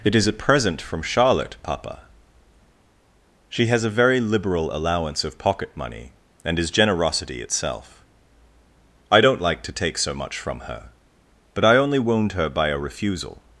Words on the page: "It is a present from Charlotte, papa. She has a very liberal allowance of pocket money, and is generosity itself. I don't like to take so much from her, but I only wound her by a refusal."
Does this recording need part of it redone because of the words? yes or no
no